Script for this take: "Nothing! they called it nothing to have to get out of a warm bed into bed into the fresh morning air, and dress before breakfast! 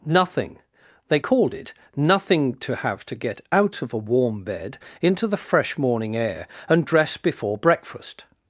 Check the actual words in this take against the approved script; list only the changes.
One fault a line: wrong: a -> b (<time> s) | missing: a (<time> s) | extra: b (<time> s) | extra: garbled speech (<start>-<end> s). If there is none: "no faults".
missing: bed into (5.3 s)